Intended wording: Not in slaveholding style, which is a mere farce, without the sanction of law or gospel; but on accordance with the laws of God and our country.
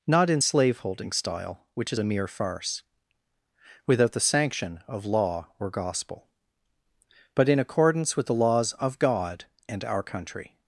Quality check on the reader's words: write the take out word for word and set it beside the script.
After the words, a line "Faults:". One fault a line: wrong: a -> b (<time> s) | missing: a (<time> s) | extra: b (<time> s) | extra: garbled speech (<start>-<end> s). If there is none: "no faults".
Not in slaveholding style, which is a mere farce, without the sanction of law or gospel; but in accordance with the laws of God and our country.
Faults:
wrong: on -> in (7.5 s)